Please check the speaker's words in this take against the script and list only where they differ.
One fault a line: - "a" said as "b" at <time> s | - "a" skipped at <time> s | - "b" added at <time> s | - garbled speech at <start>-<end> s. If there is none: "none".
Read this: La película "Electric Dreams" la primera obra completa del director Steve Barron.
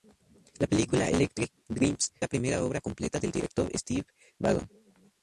none